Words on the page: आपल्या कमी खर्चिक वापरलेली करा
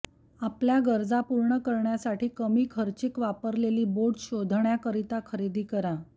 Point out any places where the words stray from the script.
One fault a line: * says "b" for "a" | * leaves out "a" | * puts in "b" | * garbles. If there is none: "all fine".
* puts in "गरजा पूर्ण करण्यासाठी"
* puts in "बोट शोधण्याकरिता खरेदी"